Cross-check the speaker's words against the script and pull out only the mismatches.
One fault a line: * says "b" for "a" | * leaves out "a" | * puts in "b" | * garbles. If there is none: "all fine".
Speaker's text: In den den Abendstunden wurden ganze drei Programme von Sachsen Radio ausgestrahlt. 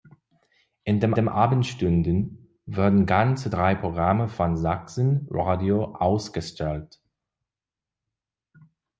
all fine